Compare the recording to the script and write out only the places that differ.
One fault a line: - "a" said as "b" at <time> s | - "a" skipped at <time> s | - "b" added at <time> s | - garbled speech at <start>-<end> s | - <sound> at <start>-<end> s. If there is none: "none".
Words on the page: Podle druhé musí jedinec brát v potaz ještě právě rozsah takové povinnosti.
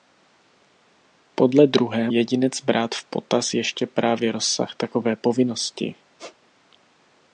- "musí" skipped at 2.1 s
- squeak at 6.2-6.4 s